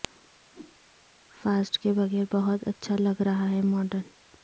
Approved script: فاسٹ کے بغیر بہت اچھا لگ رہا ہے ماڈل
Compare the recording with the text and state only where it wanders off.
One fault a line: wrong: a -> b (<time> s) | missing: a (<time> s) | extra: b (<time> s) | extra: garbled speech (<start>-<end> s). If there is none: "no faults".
no faults